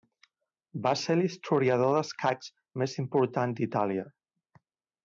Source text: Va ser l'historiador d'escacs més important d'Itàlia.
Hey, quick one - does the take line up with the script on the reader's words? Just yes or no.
yes